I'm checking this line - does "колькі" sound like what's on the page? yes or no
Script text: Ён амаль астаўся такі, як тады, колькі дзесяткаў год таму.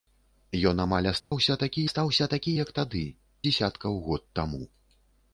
no